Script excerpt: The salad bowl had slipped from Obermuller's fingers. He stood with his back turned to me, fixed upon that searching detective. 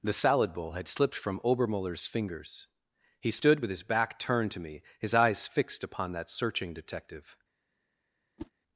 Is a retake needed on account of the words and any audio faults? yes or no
yes